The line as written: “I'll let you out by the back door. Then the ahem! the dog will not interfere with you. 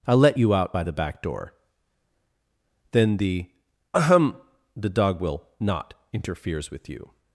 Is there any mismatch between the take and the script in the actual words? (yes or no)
yes